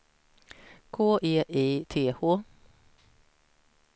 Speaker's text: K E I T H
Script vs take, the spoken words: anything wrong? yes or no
no